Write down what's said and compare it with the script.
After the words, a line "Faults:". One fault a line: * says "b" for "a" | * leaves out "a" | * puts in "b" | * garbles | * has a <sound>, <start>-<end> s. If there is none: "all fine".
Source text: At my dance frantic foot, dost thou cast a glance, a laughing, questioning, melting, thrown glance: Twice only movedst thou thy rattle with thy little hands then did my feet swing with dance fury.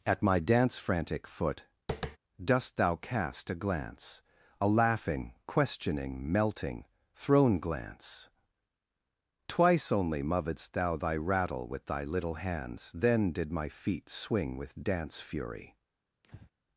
At my dance frantic foot, dost thou cast a glance, a laughing, questioning, melting, thrown glance: Twice only movedst thou thy rattle with thy little hands then did my feet swing with dance fury.
Faults:
* has a tap, 1.9-2.2 s
* has a breath, 16.2-16.5 s